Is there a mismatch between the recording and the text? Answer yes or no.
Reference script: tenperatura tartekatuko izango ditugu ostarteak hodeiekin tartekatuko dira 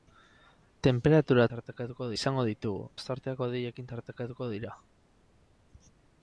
no